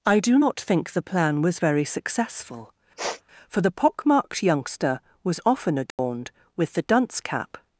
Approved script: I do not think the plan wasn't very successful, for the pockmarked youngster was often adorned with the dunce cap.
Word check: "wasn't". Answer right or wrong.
wrong